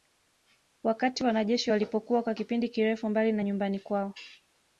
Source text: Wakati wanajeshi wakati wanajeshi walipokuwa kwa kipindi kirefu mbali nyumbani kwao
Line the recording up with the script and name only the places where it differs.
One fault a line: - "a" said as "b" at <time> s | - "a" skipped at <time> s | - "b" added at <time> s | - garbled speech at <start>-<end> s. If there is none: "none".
- "wakati wanajeshi" skipped at 1.7 s
- "na" added at 3.3 s